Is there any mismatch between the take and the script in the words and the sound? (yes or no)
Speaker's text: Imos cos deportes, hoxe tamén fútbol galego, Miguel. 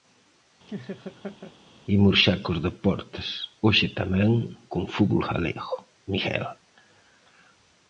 yes